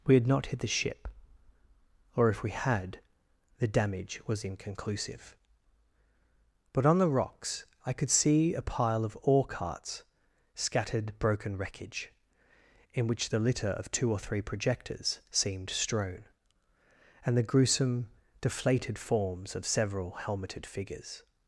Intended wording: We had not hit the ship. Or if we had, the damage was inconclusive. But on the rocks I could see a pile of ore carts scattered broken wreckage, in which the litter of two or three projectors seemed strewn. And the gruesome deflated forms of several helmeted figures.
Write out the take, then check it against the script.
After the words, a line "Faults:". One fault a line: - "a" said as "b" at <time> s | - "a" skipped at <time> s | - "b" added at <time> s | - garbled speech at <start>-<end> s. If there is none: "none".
We had not hit the ship. Or if we had, the damage was inconclusive. But on the rocks I could see a pile of ore carts scattered broken wreckage, in which the litter of two or three projectors seemed strewn. And the gruesome deflated forms of several helmeted figures.
Faults:
none